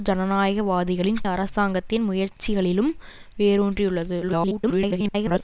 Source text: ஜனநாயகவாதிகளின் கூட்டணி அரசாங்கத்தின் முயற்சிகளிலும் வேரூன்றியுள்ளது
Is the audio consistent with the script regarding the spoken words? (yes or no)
no